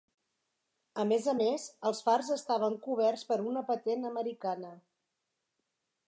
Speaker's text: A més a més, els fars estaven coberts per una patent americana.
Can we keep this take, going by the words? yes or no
yes